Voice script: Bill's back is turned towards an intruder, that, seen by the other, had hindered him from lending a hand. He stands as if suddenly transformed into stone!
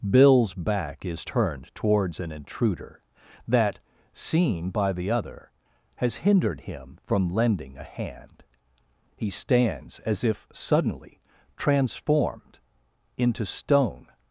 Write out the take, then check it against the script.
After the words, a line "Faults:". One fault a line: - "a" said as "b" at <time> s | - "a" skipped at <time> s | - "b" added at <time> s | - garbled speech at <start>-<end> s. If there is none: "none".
Bill's back is turned towards an intruder, that, seen by the other, has hindered him from lending a hand. He stands as if suddenly transformed into stone!
Faults:
- "had" said as "has" at 6.0 s